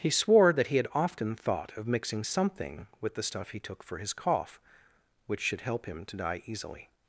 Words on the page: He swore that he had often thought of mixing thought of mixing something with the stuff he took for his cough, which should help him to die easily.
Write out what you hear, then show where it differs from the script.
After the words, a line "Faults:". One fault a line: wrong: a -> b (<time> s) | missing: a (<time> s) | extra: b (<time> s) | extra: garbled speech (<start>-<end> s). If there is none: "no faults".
He swore that he had often thought of mixing something with the stuff he took for his cough, which should help him to die easily.
Faults:
missing: thought of mixing (2.2 s)